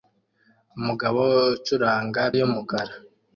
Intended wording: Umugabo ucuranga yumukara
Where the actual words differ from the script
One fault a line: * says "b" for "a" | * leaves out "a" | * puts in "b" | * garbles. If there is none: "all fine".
all fine